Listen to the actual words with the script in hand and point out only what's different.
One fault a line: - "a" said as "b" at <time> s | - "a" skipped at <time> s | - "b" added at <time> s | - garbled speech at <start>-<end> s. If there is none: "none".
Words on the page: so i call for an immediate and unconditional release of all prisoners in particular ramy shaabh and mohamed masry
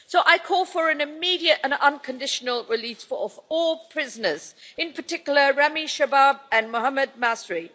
none